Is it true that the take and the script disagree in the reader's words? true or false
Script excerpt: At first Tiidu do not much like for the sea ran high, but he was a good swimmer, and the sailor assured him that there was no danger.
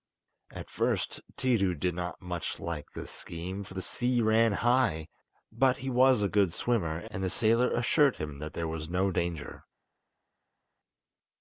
true